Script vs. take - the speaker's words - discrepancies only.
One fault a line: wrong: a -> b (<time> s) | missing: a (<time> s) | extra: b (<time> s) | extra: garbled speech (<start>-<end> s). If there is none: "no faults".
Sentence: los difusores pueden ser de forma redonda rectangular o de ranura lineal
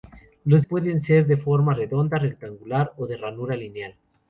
missing: difusores (0.6 s)